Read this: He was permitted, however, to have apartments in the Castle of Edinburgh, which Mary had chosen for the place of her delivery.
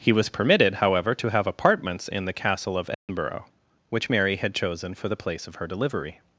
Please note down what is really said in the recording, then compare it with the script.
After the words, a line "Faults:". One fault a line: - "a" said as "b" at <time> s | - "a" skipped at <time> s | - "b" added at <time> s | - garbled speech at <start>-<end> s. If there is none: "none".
He was permitted, however, to have apartments in the Castle of Edinburgh, which Mary had chosen for the place of her delivery.
Faults:
none